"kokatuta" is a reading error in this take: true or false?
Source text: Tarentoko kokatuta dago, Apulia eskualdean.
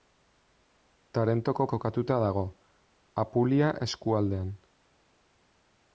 false